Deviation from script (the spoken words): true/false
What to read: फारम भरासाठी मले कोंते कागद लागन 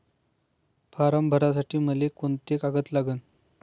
false